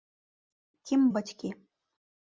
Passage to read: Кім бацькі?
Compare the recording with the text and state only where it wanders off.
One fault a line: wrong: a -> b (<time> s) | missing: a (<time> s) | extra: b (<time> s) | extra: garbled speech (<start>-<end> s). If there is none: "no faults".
no faults